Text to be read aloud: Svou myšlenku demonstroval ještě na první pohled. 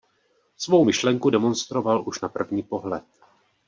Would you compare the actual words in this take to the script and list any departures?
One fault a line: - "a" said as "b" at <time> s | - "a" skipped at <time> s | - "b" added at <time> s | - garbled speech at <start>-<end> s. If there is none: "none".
- "ještě" said as "už" at 2.1 s